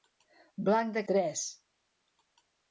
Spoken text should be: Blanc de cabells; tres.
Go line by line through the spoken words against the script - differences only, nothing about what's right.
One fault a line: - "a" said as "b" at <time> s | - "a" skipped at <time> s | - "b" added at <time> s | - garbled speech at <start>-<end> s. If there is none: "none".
- "cabells" skipped at 1.0 s